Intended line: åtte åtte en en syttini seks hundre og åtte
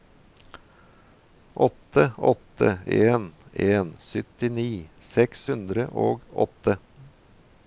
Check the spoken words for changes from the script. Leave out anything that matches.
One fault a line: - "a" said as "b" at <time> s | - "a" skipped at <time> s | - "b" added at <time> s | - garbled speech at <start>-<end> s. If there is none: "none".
none